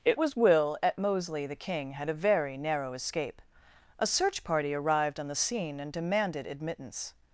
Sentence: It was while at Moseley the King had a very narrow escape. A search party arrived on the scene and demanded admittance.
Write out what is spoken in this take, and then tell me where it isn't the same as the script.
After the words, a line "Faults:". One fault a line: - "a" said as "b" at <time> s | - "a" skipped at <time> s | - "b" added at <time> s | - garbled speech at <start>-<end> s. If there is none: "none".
It was will at Moseley the King had a very narrow escape. A search party arrived on the scene and demanded admittance.
Faults:
- "while" said as "will" at 0.4 s